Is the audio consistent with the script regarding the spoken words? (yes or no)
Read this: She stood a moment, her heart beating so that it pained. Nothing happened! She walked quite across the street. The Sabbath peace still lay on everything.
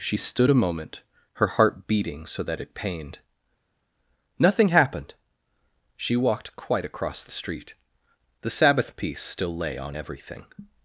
yes